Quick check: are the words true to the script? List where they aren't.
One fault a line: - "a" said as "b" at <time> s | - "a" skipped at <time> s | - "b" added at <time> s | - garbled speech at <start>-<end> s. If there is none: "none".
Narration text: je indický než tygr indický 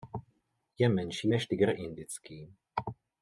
- "indický" said as "menší" at 0.9 s